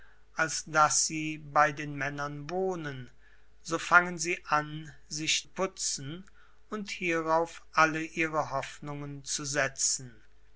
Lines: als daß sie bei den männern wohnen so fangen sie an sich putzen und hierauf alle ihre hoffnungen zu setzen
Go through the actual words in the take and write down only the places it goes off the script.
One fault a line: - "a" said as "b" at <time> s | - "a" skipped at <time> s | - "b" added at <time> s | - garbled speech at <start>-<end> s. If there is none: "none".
none